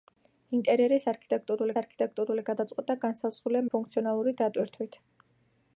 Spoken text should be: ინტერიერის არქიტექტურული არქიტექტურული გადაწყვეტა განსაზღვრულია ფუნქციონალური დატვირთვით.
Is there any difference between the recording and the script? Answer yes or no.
no